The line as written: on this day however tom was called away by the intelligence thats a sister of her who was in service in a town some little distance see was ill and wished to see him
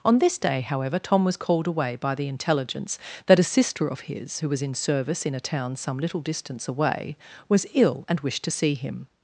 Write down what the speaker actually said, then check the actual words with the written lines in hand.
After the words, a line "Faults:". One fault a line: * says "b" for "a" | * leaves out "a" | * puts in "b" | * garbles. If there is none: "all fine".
on this day however tom was called away by the intelligence that a sister of his who was in service in a town some little distance away was ill and wished to see him
Faults:
* says "that" for "thats"
* says "his" for "her"
* says "away" for "see"